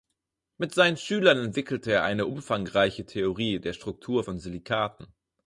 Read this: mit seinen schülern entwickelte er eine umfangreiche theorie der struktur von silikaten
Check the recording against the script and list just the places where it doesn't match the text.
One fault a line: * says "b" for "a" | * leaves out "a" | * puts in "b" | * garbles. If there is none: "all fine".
all fine